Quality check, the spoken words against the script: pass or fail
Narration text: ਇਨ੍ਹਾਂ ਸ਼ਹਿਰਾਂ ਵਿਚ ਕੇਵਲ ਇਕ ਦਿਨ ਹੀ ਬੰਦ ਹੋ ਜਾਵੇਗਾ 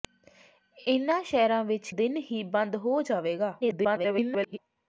fail